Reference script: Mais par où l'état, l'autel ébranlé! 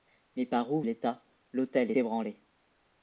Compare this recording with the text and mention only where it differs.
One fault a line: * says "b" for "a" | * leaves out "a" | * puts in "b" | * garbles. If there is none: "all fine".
all fine